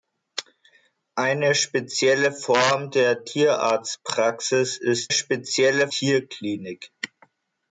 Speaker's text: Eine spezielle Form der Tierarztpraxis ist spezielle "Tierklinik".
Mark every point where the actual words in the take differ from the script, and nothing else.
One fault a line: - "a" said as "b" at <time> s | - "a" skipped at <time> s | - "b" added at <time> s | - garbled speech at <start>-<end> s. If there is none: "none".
none